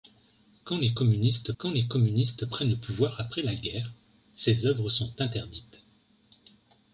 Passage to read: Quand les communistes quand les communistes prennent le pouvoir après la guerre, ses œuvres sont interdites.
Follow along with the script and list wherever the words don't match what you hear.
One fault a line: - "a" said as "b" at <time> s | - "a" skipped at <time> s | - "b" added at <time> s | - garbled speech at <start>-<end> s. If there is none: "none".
none